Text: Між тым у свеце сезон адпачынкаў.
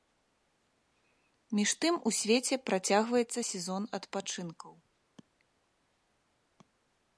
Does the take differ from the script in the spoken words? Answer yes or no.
yes